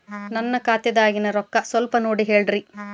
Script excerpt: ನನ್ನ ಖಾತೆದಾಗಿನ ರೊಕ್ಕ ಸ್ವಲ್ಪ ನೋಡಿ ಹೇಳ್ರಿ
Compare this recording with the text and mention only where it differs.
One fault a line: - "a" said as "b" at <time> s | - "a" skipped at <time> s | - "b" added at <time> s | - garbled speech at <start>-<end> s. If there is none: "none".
none